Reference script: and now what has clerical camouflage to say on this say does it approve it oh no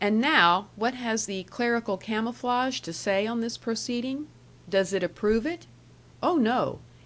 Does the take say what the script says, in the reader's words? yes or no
no